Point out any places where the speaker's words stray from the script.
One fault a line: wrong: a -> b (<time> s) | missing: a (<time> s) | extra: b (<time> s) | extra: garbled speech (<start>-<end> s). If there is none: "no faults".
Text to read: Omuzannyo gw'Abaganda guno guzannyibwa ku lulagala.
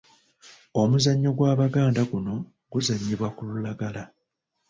no faults